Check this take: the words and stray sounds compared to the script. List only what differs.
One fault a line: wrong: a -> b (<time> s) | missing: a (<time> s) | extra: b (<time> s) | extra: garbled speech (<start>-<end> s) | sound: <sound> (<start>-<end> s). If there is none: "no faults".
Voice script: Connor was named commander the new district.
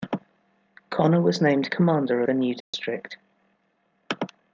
sound: dropout (2.6-2.7 s)